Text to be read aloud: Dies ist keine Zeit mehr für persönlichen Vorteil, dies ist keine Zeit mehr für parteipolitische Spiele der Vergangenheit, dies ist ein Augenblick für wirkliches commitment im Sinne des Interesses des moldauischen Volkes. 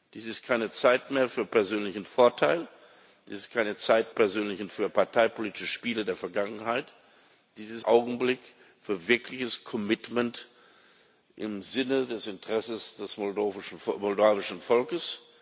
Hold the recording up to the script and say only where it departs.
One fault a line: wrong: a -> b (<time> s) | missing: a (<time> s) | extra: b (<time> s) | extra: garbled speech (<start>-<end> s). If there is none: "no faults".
wrong: mehr -> persönlichen (4.1 s)
missing: ein (7.8 s)